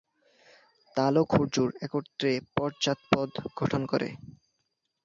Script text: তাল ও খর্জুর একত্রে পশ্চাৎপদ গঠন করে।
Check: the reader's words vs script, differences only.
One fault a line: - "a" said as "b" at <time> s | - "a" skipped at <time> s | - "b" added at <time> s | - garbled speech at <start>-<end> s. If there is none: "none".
none